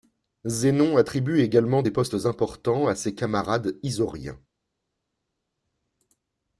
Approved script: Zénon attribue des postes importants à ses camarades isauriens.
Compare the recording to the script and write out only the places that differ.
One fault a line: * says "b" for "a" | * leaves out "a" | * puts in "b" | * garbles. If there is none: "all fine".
* puts in "également"